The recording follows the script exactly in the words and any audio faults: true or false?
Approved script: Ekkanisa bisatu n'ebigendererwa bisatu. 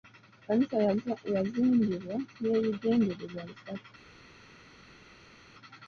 false